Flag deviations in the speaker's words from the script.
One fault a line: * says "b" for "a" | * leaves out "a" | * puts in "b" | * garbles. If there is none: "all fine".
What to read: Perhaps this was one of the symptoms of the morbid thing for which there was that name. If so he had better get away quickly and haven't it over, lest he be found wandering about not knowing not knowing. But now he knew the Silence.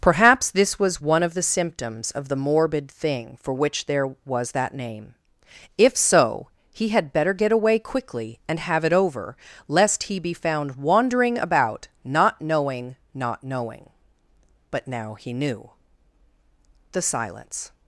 * says "have" for "haven't"